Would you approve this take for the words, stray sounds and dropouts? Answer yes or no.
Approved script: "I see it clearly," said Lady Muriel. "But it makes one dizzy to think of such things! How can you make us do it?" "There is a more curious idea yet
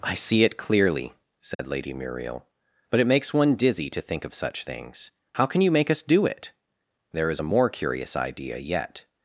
no